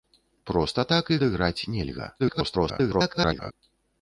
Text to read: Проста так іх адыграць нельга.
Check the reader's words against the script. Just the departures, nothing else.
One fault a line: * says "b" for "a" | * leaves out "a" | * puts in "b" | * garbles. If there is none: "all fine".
* leaves out "іх"
* garbles